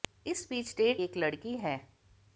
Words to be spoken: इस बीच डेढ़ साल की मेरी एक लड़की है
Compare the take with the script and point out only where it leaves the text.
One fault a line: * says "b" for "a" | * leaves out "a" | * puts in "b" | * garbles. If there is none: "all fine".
* leaves out "साल की मेरी"